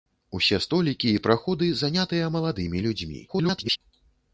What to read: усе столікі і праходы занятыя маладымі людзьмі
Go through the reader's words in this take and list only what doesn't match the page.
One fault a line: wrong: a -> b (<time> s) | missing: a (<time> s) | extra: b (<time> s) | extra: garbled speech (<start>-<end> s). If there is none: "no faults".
extra: garbled speech (3.3-3.8 s)